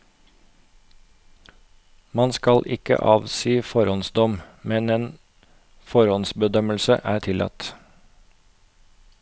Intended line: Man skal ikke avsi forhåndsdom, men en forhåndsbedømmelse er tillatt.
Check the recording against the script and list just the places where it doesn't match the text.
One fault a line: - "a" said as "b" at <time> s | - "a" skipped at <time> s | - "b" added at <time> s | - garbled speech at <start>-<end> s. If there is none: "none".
none